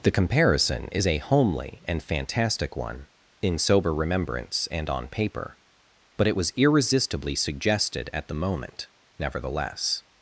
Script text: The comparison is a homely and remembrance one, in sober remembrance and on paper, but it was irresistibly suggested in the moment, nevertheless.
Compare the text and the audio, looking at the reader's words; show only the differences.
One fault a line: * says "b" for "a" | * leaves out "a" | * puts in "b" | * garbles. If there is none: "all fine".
* says "fantastic" for "remembrance"
* says "at" for "in"